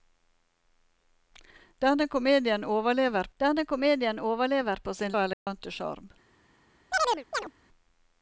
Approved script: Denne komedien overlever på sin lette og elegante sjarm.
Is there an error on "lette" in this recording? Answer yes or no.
yes